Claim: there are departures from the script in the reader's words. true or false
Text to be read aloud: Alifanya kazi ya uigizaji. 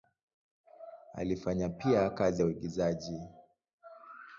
true